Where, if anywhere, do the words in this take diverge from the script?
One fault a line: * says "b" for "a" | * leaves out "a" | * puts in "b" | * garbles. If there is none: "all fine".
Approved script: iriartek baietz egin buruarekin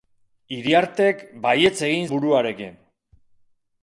all fine